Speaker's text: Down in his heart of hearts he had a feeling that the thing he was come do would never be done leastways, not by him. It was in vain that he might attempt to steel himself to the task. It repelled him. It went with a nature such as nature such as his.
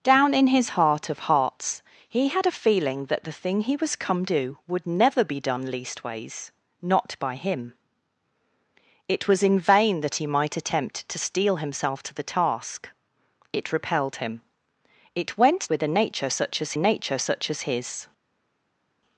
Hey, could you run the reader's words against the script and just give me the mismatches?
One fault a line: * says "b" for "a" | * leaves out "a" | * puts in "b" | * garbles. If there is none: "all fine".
all fine